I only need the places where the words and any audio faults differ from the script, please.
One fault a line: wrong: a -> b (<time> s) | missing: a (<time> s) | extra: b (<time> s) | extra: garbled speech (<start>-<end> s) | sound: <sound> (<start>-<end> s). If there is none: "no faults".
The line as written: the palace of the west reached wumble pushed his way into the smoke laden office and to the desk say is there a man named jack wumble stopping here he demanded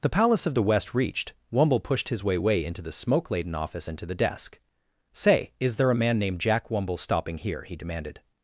extra: way (2.4 s)